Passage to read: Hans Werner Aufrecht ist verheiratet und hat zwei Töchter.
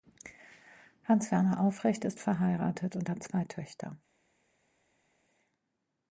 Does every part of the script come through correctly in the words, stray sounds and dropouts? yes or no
yes